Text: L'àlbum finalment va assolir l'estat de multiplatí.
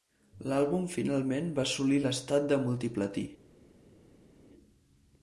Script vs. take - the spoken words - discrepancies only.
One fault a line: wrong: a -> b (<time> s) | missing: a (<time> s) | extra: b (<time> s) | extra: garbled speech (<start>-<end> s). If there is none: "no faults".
no faults